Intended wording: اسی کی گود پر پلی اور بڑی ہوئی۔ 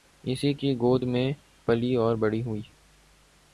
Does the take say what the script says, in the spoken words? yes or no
no